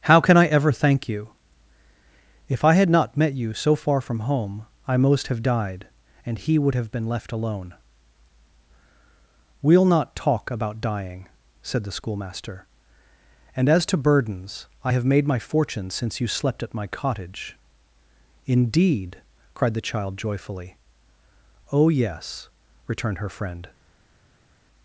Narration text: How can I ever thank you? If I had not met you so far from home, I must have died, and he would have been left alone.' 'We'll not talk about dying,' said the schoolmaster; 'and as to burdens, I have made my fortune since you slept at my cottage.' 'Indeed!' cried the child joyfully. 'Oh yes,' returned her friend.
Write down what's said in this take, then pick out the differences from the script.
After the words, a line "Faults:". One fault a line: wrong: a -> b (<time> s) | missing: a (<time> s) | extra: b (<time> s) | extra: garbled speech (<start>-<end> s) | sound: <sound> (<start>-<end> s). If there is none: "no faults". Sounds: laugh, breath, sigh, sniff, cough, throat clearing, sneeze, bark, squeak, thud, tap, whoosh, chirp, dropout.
How can I ever thank you? If I had not met you so far from home, I most have died, and he would have been left alone.' 'We'll not talk about dying,' said the schoolmaster; 'and as to burdens, I have made my fortune since you slept at my cottage.' 'Indeed!' cried the child joyfully. 'Oh yes,' returned her friend.
Faults:
wrong: must -> most (5.0 s)